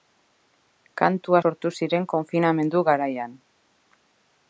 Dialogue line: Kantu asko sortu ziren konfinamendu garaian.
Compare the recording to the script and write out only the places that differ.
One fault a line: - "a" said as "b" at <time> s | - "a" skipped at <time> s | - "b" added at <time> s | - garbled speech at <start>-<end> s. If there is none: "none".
- "asko" skipped at 1.4 s